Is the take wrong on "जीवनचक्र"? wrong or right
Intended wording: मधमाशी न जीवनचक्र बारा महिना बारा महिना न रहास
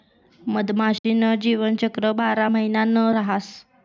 right